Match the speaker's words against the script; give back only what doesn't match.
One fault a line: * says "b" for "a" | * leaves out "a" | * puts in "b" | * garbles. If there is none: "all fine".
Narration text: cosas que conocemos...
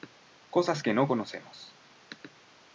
* puts in "no"